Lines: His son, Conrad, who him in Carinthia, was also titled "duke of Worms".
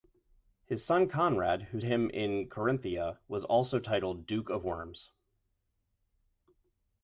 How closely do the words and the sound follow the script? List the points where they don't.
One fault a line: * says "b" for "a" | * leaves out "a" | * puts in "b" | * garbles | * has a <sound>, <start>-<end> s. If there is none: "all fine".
all fine